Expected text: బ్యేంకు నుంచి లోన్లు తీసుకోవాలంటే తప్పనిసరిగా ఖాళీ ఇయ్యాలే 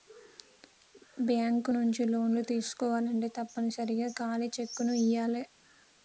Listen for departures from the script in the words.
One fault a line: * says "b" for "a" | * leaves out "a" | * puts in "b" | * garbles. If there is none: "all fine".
* puts in "చెక్కుని"